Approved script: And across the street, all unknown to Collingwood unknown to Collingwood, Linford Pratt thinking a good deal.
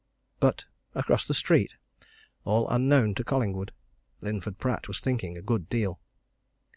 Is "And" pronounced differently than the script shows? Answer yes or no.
yes